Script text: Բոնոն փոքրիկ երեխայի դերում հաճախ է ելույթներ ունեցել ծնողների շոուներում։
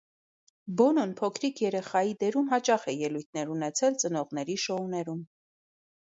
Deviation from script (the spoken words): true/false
false